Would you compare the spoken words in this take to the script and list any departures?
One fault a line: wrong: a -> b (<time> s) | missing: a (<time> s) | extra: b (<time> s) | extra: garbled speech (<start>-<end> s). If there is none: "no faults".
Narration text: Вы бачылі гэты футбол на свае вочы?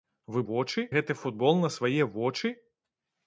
wrong: бачылі -> вочы (0.5 s)